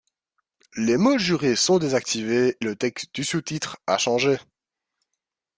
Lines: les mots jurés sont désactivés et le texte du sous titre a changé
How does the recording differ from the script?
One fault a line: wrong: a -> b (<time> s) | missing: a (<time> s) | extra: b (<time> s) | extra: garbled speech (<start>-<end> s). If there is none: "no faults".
missing: et (2.6 s)